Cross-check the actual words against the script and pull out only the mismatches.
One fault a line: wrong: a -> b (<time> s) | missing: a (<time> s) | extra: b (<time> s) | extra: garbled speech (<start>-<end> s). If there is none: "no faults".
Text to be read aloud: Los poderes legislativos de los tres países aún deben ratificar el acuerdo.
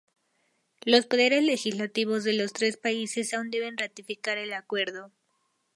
no faults